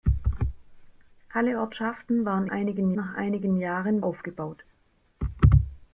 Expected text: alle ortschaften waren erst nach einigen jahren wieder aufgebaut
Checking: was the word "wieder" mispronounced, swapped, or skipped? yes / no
yes